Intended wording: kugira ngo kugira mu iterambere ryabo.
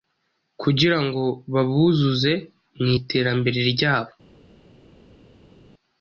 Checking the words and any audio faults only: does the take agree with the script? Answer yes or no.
no